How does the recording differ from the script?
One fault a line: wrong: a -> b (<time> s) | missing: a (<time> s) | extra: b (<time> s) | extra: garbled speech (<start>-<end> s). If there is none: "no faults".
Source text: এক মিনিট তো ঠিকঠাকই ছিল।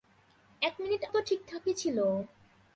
no faults